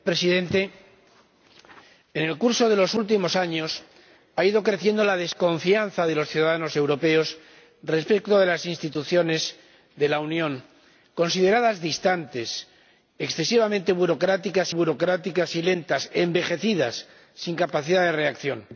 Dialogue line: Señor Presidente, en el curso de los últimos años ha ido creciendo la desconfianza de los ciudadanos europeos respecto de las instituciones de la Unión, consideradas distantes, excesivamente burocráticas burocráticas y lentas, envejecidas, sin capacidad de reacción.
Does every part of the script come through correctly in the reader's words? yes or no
yes